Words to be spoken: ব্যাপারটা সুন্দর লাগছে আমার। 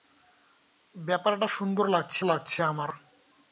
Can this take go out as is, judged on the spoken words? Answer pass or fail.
fail